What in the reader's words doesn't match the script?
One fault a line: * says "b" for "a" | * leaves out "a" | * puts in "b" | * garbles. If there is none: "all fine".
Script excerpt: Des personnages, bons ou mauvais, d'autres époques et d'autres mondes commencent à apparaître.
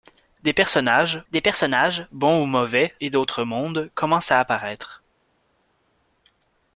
* puts in "des personnages"
* leaves out "d'autres époques"